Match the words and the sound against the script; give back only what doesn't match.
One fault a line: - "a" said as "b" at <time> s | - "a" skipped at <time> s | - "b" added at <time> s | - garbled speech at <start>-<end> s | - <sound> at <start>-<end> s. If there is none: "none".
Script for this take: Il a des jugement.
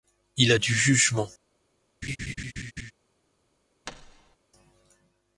- "des" said as "du" at 0.5 s
- laugh at 2.0-2.9 s
- thud at 3.9-4.4 s